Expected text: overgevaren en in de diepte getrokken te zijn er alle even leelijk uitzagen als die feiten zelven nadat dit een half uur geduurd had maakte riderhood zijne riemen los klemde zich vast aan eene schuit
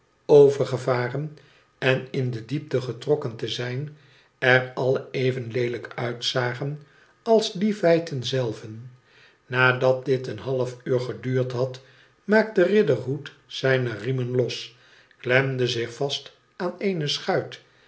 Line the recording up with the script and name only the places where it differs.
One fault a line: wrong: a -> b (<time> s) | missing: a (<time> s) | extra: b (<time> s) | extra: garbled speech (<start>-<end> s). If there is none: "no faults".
no faults